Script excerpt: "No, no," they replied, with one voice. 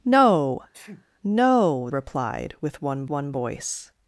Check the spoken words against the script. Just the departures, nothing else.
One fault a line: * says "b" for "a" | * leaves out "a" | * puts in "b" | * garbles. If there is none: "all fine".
* leaves out "they"
* puts in "one"